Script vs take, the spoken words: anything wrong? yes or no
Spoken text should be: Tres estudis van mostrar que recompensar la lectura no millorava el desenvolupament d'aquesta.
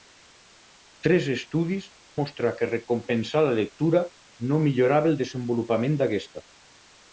yes